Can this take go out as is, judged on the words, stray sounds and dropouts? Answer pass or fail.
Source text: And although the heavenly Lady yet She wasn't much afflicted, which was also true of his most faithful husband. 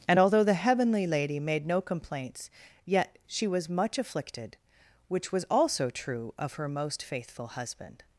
fail